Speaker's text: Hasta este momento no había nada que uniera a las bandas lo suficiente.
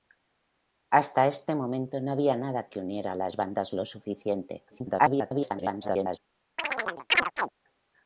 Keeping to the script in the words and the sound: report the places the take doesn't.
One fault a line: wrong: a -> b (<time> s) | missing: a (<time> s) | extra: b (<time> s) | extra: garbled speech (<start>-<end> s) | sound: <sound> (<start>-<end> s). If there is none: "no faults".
extra: garbled speech (4.7-6.2 s)
sound: chirp (6.6-7.5 s)